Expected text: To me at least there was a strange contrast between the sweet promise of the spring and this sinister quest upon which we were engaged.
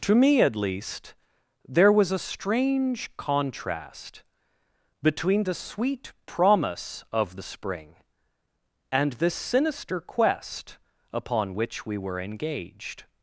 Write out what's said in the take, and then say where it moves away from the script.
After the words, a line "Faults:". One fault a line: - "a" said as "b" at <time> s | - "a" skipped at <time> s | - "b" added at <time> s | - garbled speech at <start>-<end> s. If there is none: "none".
To me at least there was a strange contrast between the sweet promise of the spring and this sinister quest upon which we were engaged.
Faults:
none